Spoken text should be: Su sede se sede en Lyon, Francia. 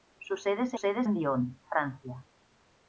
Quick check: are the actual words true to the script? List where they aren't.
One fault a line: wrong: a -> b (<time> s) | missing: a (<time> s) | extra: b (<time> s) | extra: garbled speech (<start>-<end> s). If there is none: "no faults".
no faults